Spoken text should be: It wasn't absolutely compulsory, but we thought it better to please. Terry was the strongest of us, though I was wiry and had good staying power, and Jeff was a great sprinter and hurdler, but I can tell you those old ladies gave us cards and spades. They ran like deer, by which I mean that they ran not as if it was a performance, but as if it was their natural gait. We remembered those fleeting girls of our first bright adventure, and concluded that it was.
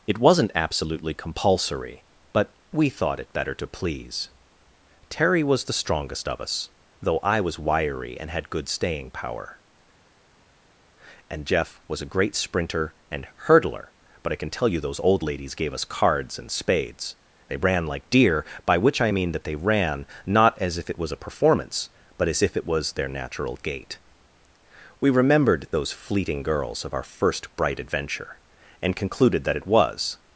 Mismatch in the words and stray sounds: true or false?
false